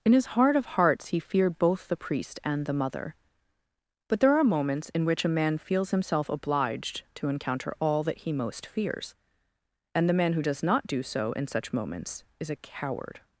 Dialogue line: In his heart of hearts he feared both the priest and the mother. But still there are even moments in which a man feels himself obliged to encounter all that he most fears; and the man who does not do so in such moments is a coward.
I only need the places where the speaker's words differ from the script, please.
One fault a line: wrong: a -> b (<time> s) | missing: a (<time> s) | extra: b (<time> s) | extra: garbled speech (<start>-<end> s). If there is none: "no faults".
missing: still (4.2 s)
missing: even (4.4 s)